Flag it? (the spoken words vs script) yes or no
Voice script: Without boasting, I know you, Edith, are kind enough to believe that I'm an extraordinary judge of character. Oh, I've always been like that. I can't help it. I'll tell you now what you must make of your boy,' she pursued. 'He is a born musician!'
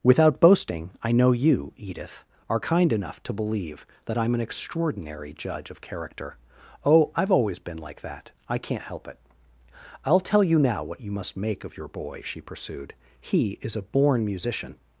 no